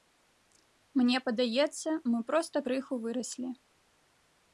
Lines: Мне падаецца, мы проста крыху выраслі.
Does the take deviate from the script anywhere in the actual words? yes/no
no